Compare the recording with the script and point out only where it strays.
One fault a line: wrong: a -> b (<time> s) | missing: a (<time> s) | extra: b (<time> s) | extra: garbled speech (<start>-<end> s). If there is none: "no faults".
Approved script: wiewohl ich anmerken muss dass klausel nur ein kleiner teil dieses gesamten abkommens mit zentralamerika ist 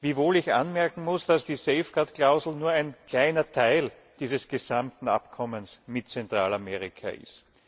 extra: die safeguard (1.4 s)